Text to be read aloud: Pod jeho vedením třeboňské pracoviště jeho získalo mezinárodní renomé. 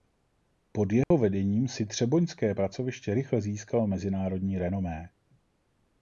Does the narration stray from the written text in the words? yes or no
yes